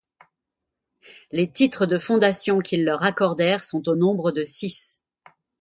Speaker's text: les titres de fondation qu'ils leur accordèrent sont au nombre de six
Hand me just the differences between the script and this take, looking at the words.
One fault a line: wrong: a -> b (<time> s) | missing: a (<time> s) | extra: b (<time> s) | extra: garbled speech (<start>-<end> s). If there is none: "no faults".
no faults